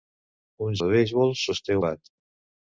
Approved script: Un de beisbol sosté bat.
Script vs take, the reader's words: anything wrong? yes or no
no